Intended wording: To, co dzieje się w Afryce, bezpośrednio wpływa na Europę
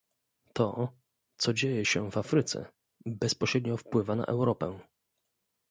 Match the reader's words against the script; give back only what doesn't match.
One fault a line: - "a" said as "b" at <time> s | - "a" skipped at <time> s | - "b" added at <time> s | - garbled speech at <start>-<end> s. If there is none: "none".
none